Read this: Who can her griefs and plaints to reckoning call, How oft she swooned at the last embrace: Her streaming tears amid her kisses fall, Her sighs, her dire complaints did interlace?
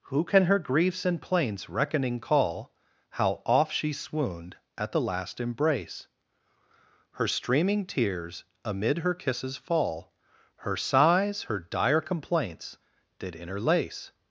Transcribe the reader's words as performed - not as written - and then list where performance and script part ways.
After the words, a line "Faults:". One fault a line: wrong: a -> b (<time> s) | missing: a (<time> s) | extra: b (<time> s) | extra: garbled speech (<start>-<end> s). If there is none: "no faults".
Who can her griefs and plaints reckoning call, How oft she swooned at the last embrace: Her streaming tears amid her kisses fall, Her sighs, her dire complaints did interlace?
Faults:
missing: to (1.7 s)